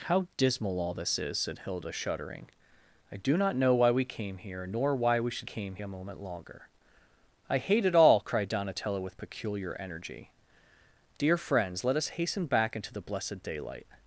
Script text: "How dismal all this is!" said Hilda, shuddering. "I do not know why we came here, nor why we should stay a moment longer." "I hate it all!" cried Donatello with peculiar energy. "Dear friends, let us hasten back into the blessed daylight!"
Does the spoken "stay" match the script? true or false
false